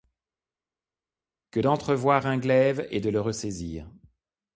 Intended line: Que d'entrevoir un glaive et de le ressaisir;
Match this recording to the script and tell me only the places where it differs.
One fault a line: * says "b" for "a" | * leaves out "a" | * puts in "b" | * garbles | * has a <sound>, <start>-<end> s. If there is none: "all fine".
all fine